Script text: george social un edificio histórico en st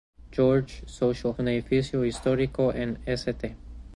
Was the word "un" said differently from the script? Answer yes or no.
no